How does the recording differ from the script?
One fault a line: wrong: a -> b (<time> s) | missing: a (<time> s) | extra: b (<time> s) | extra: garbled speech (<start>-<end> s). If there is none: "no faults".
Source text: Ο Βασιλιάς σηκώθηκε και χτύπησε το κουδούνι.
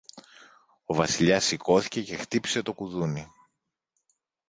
no faults